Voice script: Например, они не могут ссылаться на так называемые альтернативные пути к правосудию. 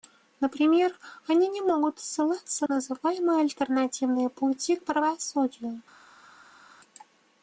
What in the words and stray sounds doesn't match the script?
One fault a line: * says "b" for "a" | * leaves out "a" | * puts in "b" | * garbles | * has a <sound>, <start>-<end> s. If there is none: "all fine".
* leaves out "на так"